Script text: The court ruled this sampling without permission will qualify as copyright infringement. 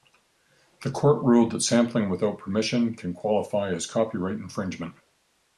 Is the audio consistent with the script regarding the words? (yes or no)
no